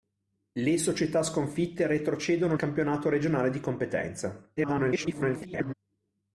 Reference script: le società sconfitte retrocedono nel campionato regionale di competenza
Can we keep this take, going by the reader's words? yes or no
no